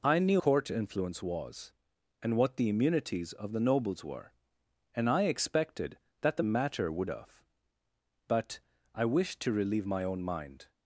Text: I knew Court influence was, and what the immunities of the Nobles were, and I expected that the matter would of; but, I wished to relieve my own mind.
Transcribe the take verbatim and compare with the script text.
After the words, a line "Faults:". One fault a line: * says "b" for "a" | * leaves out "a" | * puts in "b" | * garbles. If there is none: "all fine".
I knew Court influence was, and what the immunities of the Nobles were, and I expected that the matter would of; but, I wished to relieve my own mind.
Faults:
all fine